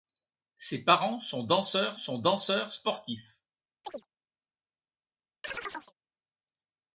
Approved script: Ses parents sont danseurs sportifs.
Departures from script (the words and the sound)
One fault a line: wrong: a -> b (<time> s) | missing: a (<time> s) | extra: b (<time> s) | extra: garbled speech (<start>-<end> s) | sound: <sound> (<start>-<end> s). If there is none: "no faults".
extra: sont danseurs (2.0 s)
sound: chirp (3.8-4.1 s)
sound: chirp (5.4-5.9 s)